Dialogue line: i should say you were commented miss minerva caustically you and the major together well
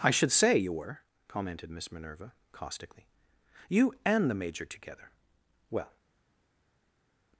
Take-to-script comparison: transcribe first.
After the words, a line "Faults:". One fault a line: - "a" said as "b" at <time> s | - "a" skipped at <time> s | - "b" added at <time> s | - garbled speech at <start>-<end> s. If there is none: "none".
i should say you were commented miss minerva caustically you and the major together well
Faults:
none